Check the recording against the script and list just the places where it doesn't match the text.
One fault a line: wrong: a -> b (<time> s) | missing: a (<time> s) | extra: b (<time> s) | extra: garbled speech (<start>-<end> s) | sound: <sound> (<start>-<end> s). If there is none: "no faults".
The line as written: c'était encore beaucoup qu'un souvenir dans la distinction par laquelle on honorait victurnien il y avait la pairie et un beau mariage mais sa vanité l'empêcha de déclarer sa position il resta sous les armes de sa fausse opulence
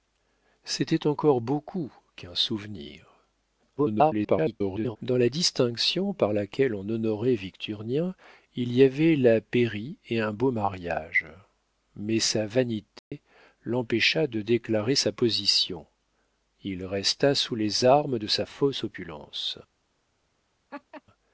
extra: garbled speech (3.8-5.0 s)
sound: dropout (13.0-13.1 s)
sound: laugh (20.7-21.0 s)